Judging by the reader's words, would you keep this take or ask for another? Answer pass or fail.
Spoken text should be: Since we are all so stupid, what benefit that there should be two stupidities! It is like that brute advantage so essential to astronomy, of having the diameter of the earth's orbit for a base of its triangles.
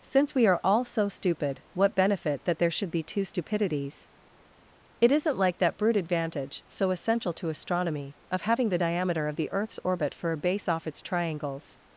fail